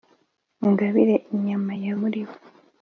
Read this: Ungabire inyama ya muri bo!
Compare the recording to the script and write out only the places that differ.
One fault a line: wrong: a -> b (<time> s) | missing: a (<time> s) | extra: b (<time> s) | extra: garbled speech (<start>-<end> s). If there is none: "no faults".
no faults